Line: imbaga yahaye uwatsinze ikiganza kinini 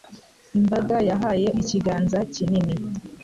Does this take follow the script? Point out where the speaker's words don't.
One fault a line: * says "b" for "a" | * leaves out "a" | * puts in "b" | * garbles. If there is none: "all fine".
* leaves out "uwatsinze"